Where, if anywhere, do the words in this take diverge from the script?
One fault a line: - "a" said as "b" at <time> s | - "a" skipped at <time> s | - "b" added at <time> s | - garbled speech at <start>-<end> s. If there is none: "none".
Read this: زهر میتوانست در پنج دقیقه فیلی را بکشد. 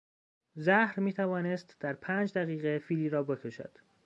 none